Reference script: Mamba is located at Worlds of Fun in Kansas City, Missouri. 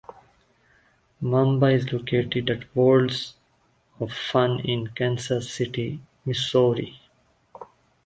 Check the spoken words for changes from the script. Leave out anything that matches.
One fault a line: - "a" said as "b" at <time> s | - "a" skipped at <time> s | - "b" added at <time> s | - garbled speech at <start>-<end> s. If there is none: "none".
none